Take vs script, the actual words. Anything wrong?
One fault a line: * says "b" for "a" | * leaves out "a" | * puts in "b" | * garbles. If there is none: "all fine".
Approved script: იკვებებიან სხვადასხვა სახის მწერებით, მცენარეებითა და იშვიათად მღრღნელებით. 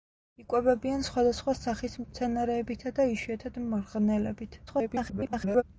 * leaves out "მწერებით"
* garbles